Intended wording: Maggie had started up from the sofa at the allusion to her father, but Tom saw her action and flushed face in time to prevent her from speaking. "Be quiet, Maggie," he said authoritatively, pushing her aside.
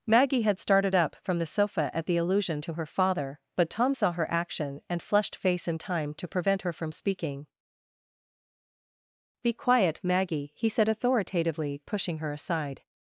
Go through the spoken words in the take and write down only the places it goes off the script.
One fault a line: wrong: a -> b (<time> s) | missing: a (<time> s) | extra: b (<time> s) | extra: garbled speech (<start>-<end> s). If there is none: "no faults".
no faults